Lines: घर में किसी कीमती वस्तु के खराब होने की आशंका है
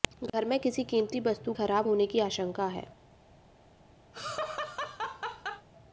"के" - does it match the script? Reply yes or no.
no